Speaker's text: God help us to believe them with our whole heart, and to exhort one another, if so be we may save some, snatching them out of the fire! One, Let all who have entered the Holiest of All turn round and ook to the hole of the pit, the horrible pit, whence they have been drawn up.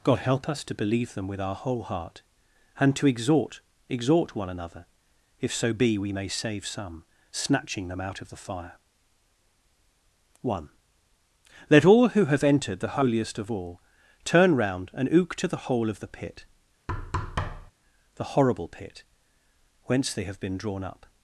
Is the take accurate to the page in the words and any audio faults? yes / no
no